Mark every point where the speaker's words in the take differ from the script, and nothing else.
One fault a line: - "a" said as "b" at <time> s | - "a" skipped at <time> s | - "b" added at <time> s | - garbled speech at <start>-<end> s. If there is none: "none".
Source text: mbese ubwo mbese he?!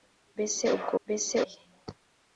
none